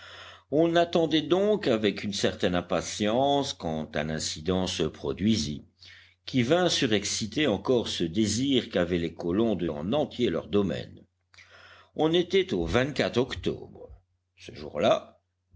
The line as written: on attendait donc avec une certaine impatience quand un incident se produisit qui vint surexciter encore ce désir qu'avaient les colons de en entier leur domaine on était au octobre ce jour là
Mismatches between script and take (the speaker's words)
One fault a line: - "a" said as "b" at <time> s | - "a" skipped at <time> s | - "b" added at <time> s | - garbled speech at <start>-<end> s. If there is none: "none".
none